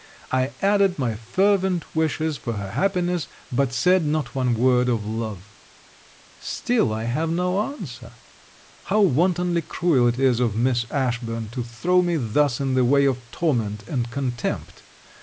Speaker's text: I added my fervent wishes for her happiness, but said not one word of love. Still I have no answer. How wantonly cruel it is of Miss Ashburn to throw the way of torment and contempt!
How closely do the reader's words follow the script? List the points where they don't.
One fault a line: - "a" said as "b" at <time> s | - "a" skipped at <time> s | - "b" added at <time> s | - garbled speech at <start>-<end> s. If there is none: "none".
- "me thus in" added at 12.0 s